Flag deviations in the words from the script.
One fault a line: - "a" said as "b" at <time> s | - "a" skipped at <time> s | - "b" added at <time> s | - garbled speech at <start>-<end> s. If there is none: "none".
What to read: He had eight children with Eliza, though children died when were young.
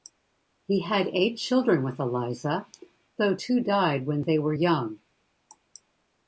- "children" said as "two" at 3.3 s
- "they" added at 4.2 s